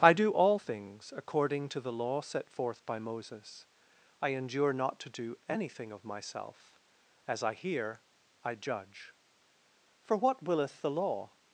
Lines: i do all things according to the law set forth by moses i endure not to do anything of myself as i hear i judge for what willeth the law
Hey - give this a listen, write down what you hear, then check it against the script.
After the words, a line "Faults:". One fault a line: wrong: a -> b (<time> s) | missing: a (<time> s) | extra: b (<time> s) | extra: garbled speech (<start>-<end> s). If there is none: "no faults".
i do all things according to the law set forth by moses i endure not to do anything of myself as i hear i judge for what willeth the law
Faults:
no faults